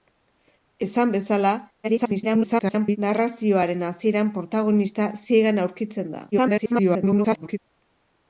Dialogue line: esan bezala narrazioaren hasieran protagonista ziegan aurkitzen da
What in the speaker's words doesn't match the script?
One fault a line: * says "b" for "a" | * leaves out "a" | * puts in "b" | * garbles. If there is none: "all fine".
* garbles
* garbles